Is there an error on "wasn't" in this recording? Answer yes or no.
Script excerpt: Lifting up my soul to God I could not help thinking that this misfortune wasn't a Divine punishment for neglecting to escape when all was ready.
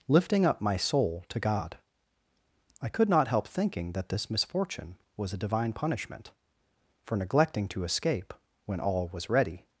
yes